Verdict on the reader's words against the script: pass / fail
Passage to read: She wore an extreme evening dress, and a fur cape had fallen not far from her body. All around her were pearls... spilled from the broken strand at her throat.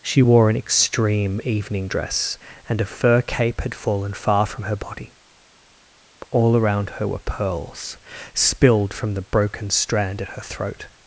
fail